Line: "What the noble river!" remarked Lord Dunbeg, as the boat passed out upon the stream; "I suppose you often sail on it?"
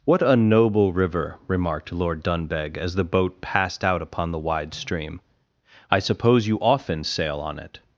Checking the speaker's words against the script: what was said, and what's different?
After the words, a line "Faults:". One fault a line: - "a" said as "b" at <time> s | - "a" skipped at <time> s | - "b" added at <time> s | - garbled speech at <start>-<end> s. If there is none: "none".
"What a noble river!" remarked Lord Dunbeg, as the boat passed out upon the wide stream; "I suppose you often sail on it?"
Faults:
- "the" said as "a" at 0.2 s
- "wide" added at 4.4 s